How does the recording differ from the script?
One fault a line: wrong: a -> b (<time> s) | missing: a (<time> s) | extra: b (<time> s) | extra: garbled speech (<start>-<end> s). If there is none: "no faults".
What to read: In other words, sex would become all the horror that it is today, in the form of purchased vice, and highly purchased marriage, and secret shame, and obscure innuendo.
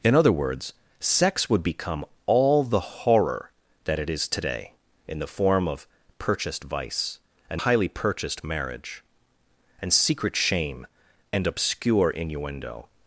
no faults